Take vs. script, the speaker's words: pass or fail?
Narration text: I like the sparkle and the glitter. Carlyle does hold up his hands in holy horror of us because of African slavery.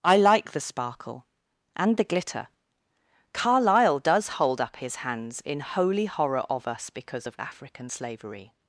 pass